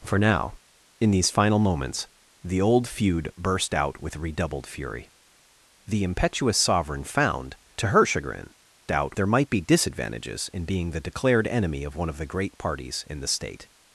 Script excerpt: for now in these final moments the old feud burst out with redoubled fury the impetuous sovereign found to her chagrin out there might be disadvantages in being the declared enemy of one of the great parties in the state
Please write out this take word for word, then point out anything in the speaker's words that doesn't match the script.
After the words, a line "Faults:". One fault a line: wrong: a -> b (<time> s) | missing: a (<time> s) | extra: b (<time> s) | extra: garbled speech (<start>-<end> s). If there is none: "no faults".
for now in these final moments the old feud burst out with redoubled fury the impetuous sovereign found to her chagrin out there might be disadvantages in being the declared enemy of one of the great parties in the state
Faults:
no faults